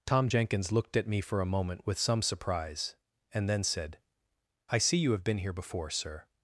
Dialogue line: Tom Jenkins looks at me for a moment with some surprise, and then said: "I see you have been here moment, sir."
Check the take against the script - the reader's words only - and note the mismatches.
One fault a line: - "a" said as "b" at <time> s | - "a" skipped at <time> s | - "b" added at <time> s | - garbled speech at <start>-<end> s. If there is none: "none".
- "looks" said as "looked" at 0.7 s
- "moment" said as "before" at 5.5 s